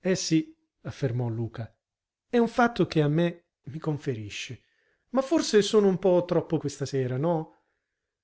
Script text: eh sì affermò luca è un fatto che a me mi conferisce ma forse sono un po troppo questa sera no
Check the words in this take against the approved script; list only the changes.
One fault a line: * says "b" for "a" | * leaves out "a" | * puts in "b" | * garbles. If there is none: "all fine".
all fine